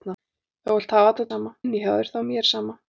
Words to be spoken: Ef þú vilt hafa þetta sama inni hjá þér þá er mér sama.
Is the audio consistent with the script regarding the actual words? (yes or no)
yes